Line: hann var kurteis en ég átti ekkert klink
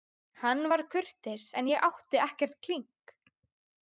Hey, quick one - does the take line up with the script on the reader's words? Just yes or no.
yes